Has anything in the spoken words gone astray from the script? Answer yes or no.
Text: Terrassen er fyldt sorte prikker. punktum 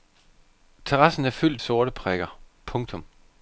no